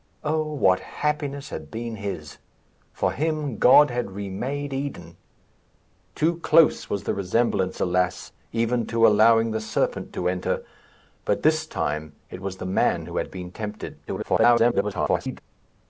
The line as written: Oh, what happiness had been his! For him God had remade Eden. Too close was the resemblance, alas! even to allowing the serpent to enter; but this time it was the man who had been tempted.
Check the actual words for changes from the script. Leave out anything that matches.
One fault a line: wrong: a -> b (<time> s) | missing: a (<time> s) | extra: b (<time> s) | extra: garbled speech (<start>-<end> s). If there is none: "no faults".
extra: garbled speech (14.1-15.4 s)